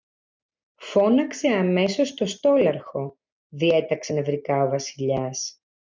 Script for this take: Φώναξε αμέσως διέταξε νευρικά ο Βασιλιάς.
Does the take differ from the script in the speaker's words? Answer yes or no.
yes